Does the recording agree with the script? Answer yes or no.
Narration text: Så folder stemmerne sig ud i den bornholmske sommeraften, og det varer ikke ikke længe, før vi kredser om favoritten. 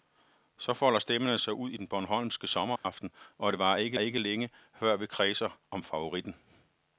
yes